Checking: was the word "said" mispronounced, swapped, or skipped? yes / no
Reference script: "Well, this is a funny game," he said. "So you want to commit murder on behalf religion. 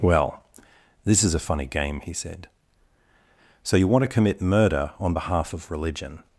no